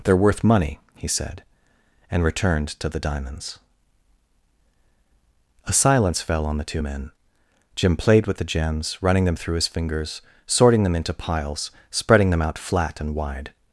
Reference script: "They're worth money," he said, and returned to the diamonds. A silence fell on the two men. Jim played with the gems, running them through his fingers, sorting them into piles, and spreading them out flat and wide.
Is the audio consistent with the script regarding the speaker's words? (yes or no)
no